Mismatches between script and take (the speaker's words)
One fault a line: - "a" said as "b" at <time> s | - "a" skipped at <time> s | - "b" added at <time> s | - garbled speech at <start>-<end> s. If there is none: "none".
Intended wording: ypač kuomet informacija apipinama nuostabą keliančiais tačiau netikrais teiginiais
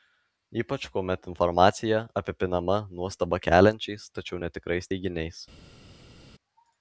none